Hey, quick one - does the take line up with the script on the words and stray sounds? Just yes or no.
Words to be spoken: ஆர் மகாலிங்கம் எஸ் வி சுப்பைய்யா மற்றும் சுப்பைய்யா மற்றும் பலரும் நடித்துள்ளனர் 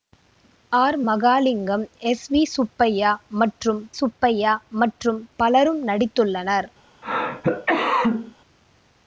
no